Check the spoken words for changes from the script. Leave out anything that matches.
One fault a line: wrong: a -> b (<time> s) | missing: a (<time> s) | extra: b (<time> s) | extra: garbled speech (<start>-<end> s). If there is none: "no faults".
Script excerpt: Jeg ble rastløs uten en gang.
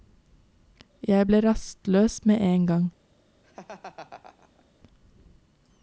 wrong: uten -> med (2.3 s)